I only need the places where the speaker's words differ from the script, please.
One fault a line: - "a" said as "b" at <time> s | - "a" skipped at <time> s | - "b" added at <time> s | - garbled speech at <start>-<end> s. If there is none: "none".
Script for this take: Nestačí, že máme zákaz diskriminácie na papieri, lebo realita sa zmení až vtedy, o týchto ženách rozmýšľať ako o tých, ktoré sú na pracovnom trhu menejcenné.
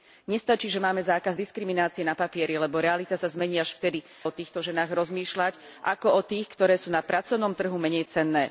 none